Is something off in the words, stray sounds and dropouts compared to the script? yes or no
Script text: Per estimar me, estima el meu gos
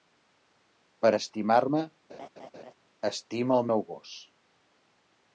yes